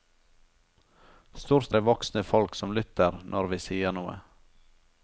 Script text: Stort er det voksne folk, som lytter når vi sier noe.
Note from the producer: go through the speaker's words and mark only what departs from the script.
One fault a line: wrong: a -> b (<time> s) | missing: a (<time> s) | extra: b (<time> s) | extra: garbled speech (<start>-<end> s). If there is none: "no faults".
no faults